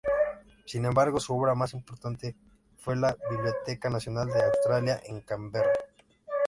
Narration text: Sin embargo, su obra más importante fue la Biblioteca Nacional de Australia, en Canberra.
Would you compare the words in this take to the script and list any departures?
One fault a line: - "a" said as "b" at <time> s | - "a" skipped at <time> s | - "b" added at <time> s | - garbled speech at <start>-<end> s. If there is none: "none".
none